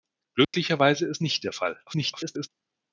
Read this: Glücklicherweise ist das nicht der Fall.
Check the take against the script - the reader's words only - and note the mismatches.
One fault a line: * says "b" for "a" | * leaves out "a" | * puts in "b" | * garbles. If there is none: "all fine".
* leaves out "das"
* garbles